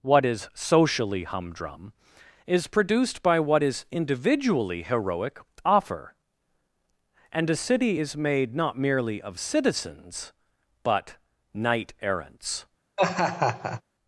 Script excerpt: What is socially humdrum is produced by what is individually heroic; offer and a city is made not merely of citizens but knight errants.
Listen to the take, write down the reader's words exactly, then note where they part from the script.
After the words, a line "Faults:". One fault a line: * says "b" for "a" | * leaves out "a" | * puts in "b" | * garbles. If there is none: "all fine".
What is socially humdrum is produced by what is individually heroic; offer and a city is made not merely of citizens but knight errants.
Faults:
all fine